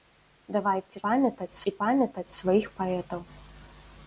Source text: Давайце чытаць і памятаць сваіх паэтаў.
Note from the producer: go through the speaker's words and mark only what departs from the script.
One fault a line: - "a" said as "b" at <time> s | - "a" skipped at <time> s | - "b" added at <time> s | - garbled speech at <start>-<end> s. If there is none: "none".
- "чытаць" said as "памятаць" at 1.1 s